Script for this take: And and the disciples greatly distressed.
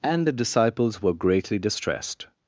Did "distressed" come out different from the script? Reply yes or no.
no